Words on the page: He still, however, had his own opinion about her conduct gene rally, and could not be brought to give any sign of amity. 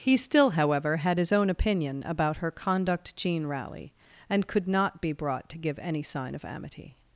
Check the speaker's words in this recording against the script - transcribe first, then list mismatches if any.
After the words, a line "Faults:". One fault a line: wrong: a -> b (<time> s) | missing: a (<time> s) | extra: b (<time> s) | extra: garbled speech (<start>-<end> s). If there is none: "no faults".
He still, however, had his own opinion about her conduct gene rally, and could not be brought to give any sign of amity.
Faults:
no faults